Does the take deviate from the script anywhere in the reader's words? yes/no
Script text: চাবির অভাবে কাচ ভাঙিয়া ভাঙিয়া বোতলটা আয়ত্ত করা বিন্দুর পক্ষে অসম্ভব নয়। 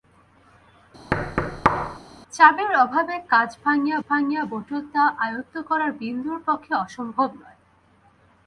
no